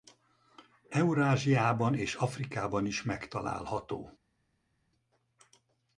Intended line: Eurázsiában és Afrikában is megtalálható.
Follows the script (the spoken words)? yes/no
yes